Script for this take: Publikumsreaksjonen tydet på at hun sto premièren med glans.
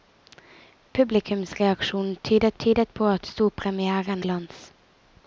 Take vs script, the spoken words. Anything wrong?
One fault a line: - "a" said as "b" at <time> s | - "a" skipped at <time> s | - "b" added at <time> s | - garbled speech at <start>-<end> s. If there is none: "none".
- "tydet" added at 2.6 s
- "hun" skipped at 3.3 s
- "med" skipped at 4.2 s